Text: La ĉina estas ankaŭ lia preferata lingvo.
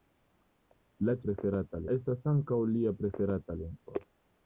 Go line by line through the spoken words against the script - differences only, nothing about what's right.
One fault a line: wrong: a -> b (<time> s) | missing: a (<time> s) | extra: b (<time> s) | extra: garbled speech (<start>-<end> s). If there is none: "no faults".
wrong: ĉina -> preferata (1.3 s)